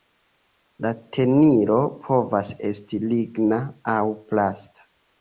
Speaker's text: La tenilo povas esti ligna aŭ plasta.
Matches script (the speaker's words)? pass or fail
pass